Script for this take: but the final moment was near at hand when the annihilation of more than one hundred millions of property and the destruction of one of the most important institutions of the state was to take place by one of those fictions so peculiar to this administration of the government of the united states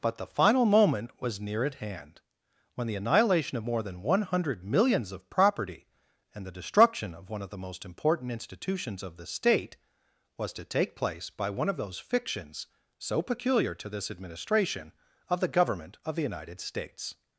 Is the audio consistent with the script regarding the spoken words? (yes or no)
yes